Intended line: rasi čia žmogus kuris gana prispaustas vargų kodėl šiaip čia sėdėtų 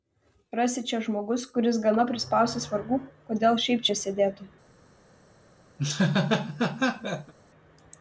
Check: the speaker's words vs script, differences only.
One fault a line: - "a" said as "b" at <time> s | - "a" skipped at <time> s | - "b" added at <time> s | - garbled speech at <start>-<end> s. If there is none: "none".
none